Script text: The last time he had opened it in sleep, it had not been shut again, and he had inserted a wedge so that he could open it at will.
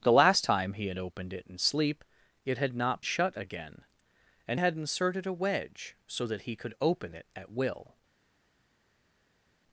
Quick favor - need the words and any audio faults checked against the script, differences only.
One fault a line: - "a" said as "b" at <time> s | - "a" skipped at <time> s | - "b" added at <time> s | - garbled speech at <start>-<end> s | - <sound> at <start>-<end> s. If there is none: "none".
- "been" skipped at 3.0 s
- "he" skipped at 4.6 s